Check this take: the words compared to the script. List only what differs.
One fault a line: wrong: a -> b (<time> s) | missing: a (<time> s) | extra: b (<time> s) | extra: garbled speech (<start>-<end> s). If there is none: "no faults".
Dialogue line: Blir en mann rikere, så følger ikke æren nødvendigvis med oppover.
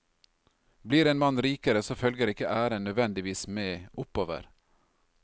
no faults